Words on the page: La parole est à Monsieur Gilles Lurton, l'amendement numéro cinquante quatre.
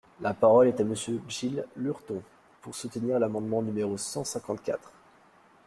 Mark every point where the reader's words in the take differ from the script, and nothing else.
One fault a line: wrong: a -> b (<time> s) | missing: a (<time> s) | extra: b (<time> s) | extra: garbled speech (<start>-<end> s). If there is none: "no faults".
extra: pour soutenir (2.6 s)
extra: cent (4.0 s)